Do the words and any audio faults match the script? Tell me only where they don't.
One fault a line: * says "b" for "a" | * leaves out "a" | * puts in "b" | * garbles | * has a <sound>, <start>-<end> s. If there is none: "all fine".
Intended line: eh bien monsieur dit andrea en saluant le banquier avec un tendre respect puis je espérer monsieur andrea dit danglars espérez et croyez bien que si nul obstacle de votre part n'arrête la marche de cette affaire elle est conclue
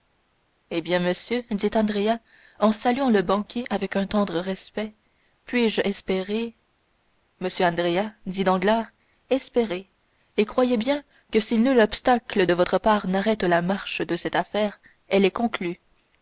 all fine